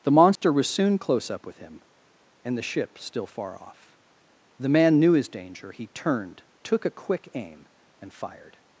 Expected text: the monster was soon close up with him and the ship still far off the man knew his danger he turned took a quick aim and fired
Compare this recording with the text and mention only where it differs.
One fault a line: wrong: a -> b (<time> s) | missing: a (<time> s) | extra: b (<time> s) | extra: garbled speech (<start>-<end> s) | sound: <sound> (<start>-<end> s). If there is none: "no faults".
sound: dropout (0.4-0.4 s)